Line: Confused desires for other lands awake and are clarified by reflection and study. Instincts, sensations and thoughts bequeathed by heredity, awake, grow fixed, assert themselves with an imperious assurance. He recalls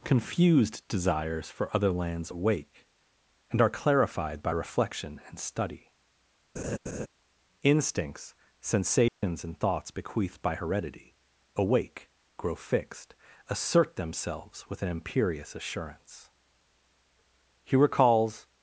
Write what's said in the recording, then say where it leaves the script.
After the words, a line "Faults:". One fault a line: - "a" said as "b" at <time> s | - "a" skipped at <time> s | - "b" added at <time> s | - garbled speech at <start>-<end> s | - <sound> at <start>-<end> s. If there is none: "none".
Confused desires for other lands awake and are clarified by reflection and study. Instincts, sensations and thoughts bequeathed by heredity, awake, grow fixed, assert themselves with an imperious assurance. He recalls
Faults:
- laugh at 6.6-7.1 s
- dropout at 9.1-9.2 s